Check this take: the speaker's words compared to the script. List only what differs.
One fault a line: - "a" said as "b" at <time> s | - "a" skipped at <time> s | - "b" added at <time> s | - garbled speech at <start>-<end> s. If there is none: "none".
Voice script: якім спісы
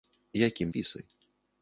none